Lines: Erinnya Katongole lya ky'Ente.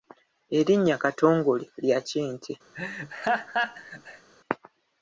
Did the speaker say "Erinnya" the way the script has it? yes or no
yes